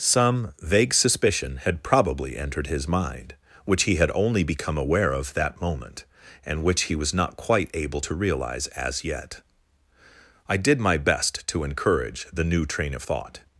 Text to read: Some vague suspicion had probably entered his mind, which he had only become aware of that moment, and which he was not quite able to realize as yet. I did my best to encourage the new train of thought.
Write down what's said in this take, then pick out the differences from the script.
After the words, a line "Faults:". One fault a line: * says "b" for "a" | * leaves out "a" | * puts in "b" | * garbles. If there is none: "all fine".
Some vague suspicion had probably entered his mind, which he had only become aware of that moment, and which he was not quite able to realize as yet. I did my best to encourage the new train of thought.
Faults:
all fine